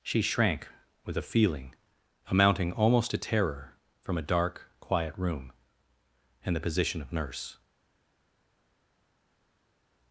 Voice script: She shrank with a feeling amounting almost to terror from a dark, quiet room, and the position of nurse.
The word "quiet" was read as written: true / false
true